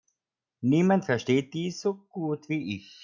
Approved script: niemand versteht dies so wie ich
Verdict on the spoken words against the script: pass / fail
fail